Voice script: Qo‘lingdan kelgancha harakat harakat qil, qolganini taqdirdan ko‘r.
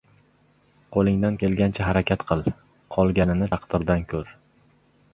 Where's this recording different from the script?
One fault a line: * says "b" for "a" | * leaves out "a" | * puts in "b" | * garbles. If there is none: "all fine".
* leaves out "harakat"